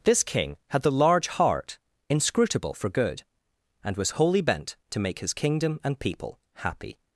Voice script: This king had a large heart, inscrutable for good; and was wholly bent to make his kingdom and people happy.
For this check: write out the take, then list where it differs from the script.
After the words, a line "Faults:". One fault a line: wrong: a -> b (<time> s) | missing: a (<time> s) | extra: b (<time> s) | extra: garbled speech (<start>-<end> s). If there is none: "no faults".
This king had the large heart, inscrutable for good; and was wholly bent to make his kingdom and people happy.
Faults:
wrong: a -> the (0.8 s)